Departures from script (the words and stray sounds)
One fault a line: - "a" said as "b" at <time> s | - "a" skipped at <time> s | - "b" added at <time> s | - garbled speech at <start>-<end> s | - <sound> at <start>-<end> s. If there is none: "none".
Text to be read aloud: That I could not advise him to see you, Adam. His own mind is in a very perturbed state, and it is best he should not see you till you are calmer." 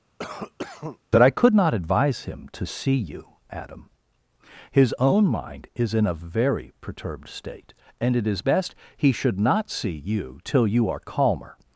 - cough at 0.2-1.0 s